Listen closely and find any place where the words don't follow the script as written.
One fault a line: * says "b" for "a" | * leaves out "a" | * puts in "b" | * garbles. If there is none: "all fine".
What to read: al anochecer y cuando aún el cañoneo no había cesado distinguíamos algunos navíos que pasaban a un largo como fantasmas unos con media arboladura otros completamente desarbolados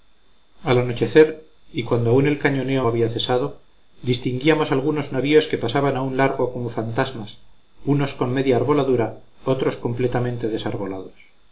* leaves out "no"